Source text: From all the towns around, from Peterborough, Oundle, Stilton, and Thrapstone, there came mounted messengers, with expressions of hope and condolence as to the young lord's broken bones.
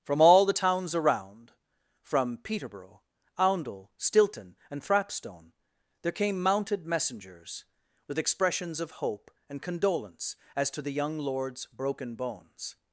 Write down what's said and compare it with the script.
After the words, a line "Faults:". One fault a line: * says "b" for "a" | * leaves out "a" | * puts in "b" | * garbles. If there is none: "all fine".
From all the towns around, from Peterborough, Oundle, Stilton, and Thrapstone, there came mounted messengers, with expressions of hope and condolence as to the young lord's broken bones.
Faults:
all fine